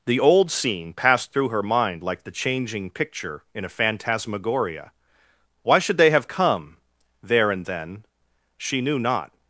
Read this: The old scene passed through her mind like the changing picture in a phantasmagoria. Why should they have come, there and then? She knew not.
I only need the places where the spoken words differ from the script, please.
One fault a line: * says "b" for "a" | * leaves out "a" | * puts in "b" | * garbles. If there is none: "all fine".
all fine